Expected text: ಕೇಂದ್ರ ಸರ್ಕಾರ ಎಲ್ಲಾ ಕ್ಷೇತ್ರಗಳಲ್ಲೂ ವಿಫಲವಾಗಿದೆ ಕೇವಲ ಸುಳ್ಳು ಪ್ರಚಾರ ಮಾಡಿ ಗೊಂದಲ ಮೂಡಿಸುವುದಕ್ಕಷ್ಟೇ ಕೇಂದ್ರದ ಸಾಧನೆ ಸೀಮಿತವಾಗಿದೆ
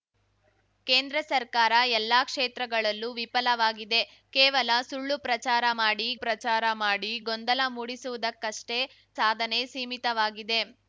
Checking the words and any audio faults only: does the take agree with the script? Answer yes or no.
no